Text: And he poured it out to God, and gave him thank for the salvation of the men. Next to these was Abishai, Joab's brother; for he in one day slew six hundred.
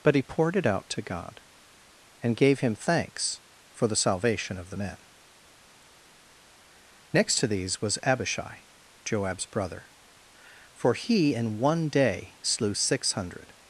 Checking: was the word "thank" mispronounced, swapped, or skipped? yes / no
yes